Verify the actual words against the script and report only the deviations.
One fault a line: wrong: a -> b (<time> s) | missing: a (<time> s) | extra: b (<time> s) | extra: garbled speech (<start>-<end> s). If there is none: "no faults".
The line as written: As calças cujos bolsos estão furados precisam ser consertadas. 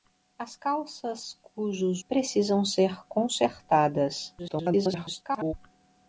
missing: bolsos estão furados (2.0 s)
extra: garbled speech (4.4-5.5 s)